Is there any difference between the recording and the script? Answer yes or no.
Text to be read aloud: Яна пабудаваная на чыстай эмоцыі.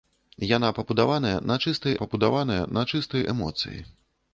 yes